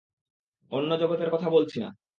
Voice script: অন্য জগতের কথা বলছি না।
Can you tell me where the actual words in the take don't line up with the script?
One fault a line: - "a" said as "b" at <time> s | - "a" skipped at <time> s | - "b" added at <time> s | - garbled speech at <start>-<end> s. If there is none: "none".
none